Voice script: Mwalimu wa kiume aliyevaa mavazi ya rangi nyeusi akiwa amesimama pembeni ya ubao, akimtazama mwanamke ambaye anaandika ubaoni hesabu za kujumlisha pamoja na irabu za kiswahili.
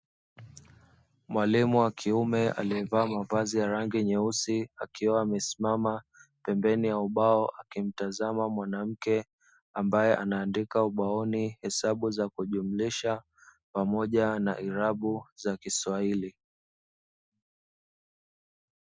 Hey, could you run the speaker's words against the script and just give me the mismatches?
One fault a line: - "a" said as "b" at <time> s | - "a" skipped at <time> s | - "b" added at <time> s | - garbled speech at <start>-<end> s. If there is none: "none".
none